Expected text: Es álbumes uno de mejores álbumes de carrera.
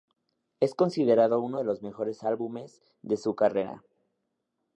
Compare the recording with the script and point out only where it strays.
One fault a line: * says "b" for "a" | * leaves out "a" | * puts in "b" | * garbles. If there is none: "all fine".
* says "considerado" for "álbumes"
* puts in "los"
* puts in "su"